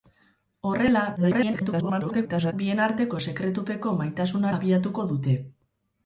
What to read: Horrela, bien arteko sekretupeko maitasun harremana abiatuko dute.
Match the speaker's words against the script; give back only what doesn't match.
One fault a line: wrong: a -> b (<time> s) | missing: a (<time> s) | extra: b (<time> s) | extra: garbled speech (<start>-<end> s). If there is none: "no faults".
extra: garbled speech (1.2-2.5 s)
missing: harremana (4.5 s)